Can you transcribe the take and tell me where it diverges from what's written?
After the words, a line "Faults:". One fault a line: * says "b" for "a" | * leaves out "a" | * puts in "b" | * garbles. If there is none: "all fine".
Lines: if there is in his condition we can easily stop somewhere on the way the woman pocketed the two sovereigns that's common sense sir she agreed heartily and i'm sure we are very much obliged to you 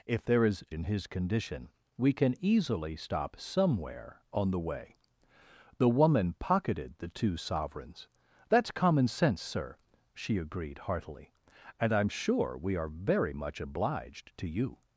if there is in his condition we can easily stop somewhere on the way the woman pocketed the two sovereigns that's common sense sir she agreed heartily and i'm sure we are very much obliged to you
Faults:
all fine